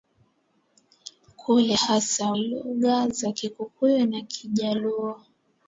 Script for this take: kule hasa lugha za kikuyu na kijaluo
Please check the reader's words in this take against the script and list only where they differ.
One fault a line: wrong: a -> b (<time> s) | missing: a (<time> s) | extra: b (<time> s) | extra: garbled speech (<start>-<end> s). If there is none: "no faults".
no faults